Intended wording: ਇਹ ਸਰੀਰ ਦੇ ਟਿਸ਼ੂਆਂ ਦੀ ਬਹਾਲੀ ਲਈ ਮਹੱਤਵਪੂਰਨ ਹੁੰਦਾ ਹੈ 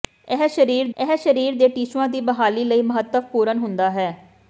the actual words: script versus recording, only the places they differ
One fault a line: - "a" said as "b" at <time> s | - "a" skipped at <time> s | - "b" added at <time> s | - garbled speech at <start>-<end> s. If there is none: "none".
- "ਇਹ ਸਰੀਰ" added at 1.0 s